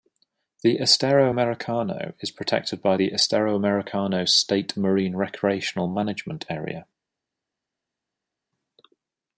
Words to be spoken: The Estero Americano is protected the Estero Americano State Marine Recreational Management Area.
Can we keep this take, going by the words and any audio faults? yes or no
no